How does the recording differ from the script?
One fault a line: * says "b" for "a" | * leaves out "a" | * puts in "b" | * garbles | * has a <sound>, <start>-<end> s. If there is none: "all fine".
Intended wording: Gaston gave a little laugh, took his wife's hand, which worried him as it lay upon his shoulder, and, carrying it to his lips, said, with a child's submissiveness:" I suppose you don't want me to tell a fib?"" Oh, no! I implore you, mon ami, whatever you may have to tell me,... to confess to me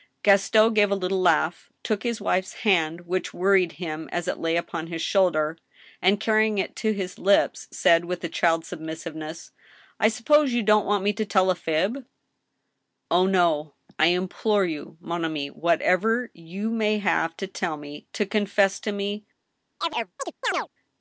* has a chirp, 19.8-20.7 s